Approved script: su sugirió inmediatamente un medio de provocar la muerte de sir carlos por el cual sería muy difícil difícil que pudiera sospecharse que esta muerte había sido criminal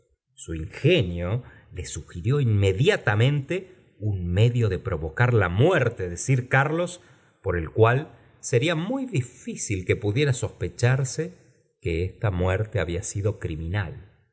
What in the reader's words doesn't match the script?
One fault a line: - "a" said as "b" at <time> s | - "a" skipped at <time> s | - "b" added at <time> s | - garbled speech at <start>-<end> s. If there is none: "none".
- "ingenio le" added at 0.6 s
- "difícil" skipped at 9.8 s